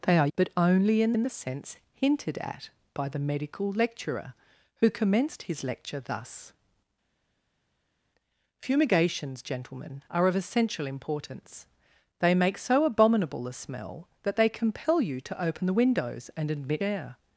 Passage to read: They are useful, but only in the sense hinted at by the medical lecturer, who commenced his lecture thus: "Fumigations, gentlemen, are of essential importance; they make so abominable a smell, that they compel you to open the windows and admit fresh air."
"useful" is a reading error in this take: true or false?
true